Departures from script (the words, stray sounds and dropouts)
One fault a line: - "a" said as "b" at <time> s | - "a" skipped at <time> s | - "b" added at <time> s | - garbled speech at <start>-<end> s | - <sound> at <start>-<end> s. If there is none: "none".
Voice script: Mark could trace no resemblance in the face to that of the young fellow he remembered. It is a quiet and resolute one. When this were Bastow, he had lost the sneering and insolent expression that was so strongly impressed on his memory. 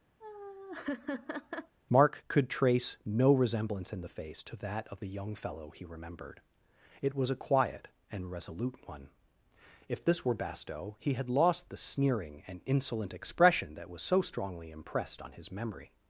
- laugh at 0.2-1.8 s
- "is" said as "was" at 7.2 s
- "When" said as "If" at 9.9 s